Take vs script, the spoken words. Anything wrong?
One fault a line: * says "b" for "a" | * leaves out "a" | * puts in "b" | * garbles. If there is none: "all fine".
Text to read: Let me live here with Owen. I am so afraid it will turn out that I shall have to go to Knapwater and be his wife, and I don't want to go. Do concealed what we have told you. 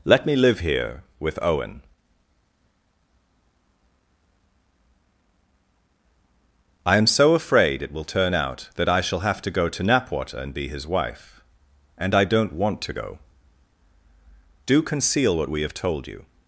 * says "conceal" for "concealed"